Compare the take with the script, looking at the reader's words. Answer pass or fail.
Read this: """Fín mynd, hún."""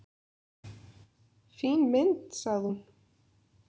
fail